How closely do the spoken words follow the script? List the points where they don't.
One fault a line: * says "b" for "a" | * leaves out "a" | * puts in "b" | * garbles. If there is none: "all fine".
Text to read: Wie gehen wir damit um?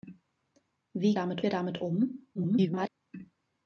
* says "damit" for "gehen"
* garbles